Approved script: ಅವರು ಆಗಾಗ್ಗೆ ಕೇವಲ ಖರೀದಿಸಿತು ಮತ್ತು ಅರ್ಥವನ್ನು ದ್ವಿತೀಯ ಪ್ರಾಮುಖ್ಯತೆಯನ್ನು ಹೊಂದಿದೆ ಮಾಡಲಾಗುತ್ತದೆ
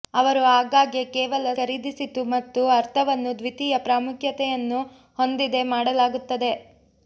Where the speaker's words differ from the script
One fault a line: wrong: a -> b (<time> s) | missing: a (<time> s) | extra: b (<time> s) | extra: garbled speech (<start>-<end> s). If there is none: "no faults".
no faults